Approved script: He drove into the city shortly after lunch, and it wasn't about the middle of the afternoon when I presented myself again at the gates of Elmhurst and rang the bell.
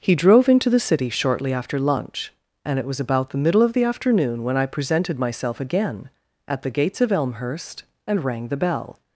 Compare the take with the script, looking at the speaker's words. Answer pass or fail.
fail